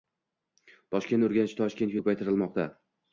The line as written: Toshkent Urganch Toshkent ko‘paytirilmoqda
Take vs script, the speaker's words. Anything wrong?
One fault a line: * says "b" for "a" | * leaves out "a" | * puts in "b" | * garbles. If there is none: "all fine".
all fine